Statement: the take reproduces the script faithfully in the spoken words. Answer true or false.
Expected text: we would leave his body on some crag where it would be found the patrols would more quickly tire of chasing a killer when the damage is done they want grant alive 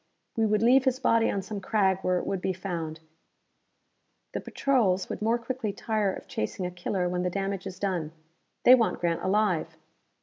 true